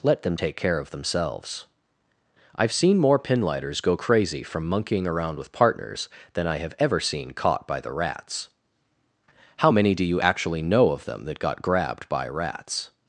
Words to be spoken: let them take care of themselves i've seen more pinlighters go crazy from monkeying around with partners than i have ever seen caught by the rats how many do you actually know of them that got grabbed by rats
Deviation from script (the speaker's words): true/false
false